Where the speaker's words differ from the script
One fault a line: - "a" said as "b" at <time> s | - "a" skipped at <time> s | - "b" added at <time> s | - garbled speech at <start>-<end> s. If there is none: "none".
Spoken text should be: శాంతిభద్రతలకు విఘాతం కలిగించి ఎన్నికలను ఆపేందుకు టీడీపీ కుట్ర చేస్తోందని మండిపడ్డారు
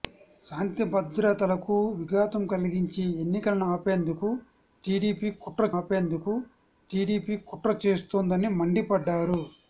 - "ఆపేందుకు టీడీపీ కుట్ర" added at 5.8 s